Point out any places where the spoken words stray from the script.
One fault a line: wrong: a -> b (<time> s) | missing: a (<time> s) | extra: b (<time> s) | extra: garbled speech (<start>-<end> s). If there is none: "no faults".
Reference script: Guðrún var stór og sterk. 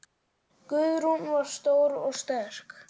no faults